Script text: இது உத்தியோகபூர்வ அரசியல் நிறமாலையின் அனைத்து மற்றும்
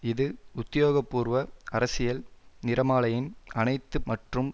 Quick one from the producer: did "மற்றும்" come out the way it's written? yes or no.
yes